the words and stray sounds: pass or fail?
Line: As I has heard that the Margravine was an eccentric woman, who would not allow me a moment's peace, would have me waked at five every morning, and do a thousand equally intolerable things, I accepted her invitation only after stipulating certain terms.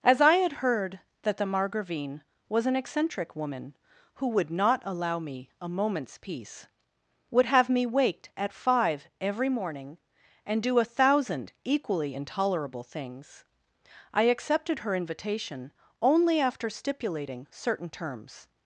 fail